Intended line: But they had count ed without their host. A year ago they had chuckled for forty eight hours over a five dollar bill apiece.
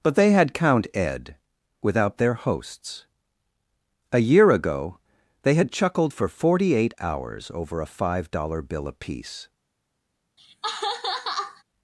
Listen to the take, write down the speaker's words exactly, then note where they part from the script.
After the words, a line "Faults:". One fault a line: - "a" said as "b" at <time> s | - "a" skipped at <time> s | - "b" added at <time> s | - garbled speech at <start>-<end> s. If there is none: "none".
But they had count ed without their hosts. A year ago they had chuckled for forty eight hours over a five dollar bill apiece.
Faults:
- "host" said as "hosts" at 2.3 s